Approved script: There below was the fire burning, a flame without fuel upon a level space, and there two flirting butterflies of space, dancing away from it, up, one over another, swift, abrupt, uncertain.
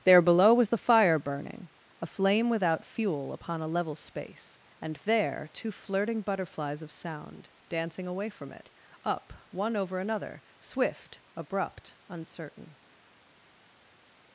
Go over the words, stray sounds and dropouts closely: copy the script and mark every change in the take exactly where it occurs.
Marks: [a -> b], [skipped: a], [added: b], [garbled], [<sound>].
There below was the fire burning, a flame without fuel upon a level space, and there two flirting butterflies of [space, -> sound] dancing away from it, up, one over another, swift, abrupt, uncertain.